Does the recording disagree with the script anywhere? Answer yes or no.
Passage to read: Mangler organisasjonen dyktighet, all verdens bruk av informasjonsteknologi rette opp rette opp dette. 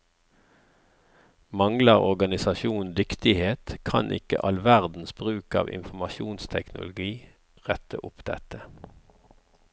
yes